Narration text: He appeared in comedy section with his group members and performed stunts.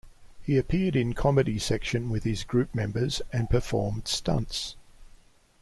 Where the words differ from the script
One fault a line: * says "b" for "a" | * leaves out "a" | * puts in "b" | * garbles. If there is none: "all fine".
all fine